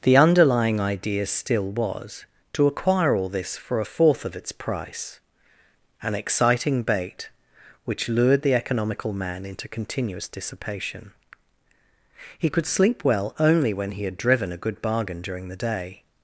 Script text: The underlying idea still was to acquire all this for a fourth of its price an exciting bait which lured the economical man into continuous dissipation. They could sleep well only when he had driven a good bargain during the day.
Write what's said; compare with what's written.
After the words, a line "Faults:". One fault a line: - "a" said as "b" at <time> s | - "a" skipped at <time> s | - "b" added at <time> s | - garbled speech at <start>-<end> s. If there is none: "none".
The underlying idea still was to acquire all this for a fourth of its price an exciting bait which lured the economical man into continuous dissipation. He could sleep well only when he had driven a good bargain during the day.
Faults:
- "They" said as "He" at 12.4 s